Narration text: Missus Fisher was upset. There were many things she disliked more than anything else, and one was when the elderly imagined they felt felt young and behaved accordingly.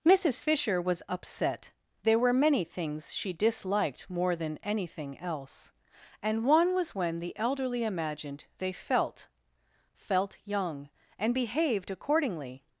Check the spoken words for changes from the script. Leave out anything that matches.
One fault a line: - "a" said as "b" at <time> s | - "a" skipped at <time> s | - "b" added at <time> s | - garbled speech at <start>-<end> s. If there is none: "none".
none